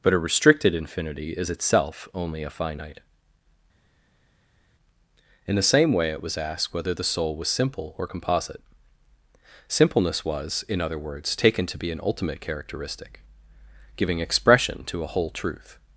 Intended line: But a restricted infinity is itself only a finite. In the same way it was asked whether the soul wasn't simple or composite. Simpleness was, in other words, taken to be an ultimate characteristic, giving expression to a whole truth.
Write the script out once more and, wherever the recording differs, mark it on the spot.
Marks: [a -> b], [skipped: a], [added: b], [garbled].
But a restricted infinity is itself only a finite. In the same way it was asked whether the soul [wasn't -> was] simple or composite. Simpleness was, in other words, taken to be an ultimate characteristic, giving expression to a whole truth.